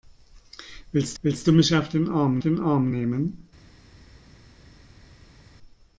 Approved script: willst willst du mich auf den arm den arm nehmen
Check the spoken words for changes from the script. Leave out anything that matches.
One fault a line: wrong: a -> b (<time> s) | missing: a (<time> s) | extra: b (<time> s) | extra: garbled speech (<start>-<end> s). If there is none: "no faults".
no faults